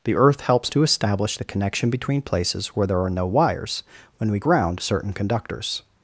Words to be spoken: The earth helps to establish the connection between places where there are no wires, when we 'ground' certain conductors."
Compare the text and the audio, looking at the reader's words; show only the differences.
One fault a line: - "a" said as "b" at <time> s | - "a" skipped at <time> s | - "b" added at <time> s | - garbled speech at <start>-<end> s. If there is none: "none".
none